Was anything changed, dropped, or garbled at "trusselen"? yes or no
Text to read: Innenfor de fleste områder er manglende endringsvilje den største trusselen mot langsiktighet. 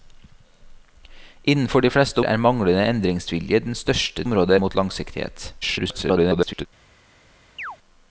yes